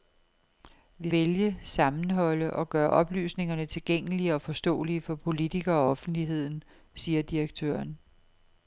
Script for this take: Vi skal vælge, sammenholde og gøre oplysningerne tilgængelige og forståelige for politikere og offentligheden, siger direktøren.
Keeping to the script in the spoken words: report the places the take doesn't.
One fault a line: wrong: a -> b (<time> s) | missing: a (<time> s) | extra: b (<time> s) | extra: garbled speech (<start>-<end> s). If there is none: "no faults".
missing: skal (1.1 s)